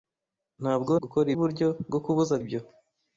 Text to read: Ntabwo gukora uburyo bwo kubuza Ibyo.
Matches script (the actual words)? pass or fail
pass